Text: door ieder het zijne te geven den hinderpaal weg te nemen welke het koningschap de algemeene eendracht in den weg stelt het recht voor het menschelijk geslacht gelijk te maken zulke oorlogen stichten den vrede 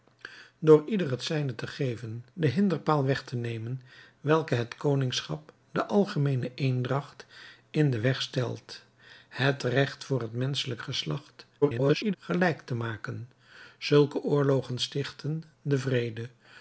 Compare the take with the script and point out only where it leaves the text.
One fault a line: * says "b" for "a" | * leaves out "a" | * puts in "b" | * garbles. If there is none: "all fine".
* garbles